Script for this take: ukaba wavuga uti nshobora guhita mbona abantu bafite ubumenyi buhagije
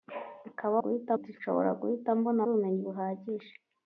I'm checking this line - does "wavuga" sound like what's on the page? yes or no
no